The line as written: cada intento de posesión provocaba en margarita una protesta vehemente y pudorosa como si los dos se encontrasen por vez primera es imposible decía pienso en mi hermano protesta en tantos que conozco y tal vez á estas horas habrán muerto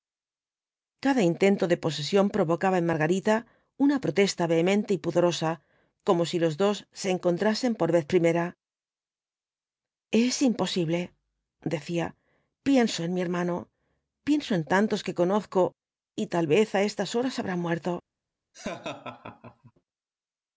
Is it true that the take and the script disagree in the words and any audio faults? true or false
true